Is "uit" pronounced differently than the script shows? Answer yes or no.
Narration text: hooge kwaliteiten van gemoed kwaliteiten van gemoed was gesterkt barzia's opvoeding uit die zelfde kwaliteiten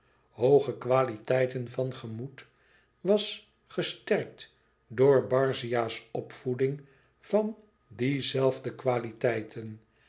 yes